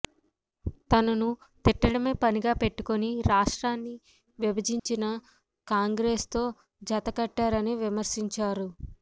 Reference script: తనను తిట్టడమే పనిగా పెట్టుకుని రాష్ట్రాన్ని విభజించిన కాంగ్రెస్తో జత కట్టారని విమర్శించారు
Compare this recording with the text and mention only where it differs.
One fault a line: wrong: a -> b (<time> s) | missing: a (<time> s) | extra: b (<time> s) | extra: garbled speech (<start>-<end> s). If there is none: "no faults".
no faults